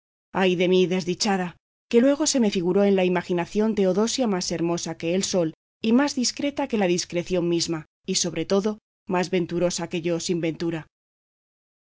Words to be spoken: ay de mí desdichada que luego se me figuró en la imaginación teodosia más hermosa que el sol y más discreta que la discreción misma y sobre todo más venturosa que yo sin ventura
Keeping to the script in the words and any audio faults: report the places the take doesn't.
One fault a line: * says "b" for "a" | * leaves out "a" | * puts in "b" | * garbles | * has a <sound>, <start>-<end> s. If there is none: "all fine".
all fine